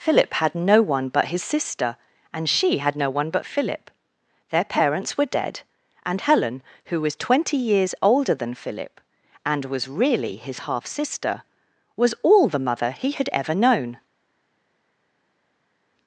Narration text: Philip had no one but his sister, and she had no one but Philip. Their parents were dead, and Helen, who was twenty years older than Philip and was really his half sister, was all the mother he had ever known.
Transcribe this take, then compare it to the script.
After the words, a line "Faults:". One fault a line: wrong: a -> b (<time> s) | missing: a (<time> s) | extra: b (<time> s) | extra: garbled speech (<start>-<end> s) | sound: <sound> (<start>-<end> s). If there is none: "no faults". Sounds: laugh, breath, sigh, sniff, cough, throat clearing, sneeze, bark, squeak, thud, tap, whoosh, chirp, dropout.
Philip had no one but his sister, and she had no one but Philip. Their parents were dead, and Helen, who was twenty years older than Philip and was really his half sister, was all the mother he had ever known.
Faults:
no faults